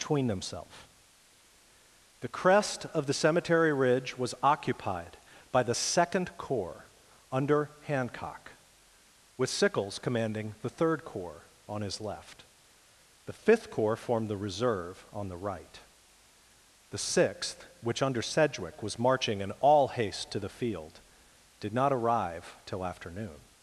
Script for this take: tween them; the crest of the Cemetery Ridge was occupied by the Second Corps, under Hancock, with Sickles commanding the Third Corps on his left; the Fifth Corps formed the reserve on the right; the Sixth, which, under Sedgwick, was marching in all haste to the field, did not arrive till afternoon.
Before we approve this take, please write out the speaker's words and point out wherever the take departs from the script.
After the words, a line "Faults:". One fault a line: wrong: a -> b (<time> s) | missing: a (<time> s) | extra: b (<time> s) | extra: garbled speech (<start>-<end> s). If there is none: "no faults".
between themselves; the crest of the Cemetery Ridge was occupied by the Second Corps, under Hancock, with Sickles commanding the Third Corps on his left; the Fifth Corps formed the reserve on the right; the Sixth, which, under Sedgwick, was marching in all haste to the field, did not arrive till afternoon.
Faults:
wrong: tween them -> between themselves (0.0 s)